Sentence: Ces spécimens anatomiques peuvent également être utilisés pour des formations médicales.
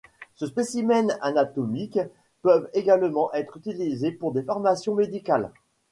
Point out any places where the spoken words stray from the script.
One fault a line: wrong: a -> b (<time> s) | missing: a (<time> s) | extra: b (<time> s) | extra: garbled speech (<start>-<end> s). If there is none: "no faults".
no faults